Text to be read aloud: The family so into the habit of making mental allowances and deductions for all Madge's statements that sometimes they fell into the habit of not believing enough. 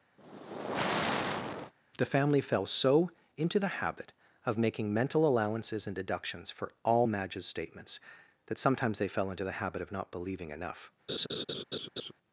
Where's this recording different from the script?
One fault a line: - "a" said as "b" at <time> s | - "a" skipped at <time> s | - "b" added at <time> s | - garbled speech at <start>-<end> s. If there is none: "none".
- "fell" added at 2.4 s